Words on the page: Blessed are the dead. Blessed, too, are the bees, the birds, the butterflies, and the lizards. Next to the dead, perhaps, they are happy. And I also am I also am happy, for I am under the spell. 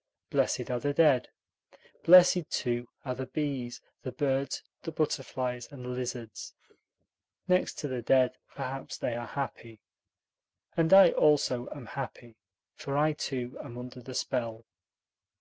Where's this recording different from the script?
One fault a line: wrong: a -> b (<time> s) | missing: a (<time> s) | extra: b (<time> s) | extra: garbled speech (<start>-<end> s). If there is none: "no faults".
missing: I also am (11.9 s)
extra: too (13.1 s)